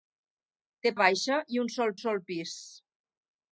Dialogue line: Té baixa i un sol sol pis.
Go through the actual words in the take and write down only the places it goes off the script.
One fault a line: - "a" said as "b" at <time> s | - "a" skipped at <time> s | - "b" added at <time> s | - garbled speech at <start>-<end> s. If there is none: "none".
none